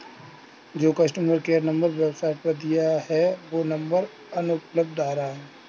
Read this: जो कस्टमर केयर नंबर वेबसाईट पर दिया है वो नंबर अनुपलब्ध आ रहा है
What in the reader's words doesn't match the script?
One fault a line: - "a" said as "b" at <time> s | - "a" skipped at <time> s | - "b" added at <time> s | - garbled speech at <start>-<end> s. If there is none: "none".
none